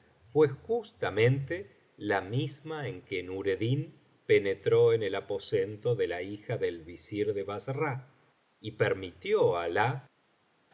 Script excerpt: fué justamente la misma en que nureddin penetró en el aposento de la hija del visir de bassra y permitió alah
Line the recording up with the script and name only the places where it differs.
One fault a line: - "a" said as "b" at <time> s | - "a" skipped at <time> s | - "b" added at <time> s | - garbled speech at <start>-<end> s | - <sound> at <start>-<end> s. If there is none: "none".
none